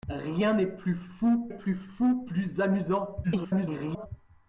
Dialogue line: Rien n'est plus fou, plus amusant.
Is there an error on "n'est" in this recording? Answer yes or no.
no